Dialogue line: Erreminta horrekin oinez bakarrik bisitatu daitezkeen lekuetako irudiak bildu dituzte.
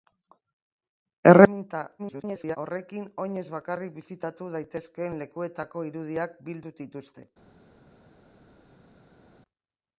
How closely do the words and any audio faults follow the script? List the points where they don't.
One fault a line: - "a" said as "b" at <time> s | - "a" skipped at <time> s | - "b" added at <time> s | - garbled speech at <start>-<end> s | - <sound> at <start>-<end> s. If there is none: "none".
- garbled speech at 2.0-2.6 s